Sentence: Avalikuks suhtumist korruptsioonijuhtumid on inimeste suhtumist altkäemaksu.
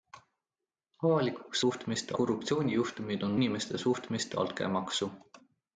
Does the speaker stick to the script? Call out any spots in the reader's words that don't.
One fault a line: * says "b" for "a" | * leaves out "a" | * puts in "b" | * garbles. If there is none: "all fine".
all fine